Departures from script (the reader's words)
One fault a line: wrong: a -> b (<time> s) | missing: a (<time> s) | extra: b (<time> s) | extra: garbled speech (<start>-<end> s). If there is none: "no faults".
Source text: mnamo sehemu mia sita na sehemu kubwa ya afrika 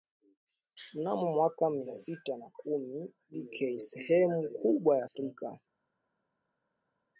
wrong: sehemu -> mwaka (1.3 s)
extra: kumi b k (2.5 s)